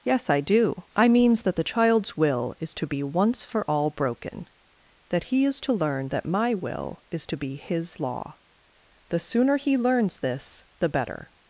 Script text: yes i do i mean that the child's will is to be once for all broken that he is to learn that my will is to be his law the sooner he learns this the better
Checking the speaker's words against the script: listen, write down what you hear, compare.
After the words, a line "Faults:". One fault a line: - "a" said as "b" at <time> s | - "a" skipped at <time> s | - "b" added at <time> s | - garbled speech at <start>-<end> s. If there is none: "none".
yes i do i means that the child's will is to be once for all broken that he is to learn that my will is to be his law the sooner he learns this the better
Faults:
- "mean" said as "means" at 1.1 s